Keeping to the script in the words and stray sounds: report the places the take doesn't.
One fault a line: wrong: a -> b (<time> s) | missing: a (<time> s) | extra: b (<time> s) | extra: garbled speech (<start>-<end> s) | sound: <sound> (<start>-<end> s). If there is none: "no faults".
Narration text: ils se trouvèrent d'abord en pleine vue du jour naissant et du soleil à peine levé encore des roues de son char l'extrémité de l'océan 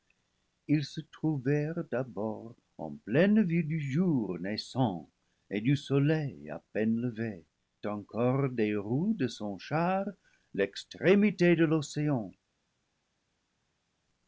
no faults